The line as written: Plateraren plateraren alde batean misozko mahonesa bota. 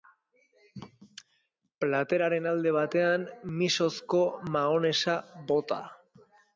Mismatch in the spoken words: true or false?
true